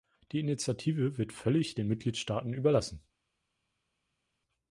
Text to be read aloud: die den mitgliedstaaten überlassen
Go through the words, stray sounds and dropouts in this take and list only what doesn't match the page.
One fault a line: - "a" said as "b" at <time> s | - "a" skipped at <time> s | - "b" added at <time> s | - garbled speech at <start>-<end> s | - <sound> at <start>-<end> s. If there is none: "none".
- "initiative wird völlig" added at 0.4 s